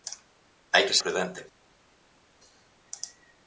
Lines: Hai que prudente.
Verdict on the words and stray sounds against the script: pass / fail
pass